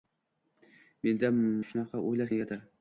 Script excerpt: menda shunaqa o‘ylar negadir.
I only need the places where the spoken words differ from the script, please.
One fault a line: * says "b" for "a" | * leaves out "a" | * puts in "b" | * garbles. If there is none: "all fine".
all fine